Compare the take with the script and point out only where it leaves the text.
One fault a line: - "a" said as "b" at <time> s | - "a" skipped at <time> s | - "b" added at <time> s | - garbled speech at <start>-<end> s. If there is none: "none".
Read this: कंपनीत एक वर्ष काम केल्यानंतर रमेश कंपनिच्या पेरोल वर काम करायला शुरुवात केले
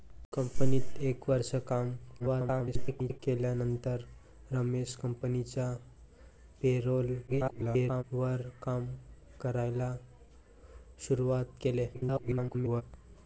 - garbled speech at 2.2-3.2 s
- garbled speech at 7.3-8.0 s
- garbled speech at 11.9-12.8 s